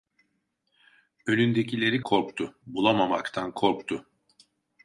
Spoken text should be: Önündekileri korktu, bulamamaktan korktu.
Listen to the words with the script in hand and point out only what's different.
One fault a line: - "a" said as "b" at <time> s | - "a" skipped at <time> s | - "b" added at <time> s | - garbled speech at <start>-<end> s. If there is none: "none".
none